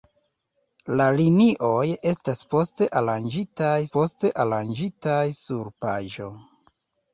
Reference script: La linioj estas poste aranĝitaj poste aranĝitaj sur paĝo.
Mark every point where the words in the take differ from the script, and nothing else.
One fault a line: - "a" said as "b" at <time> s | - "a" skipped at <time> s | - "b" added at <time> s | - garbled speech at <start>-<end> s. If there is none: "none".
none